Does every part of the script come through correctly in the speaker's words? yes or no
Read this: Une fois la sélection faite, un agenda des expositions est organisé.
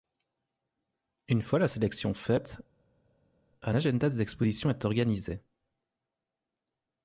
yes